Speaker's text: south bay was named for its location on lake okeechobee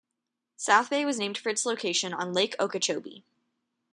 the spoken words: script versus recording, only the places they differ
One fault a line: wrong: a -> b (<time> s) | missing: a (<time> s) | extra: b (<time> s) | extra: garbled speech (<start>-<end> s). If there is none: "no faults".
no faults